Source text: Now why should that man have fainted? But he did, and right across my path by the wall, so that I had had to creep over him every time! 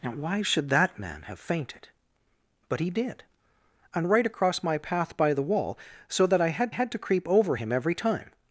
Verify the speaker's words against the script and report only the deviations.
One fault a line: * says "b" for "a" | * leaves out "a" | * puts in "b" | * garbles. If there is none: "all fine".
all fine